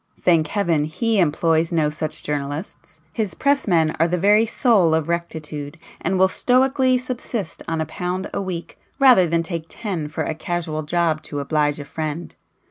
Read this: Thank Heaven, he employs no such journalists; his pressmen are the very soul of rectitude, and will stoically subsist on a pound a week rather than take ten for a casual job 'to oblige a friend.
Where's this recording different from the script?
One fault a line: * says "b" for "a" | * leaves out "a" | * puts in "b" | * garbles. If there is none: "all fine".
all fine